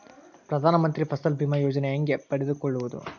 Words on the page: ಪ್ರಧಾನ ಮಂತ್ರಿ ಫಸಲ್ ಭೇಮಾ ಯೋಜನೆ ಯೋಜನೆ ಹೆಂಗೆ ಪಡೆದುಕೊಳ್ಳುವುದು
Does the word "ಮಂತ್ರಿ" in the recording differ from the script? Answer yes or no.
no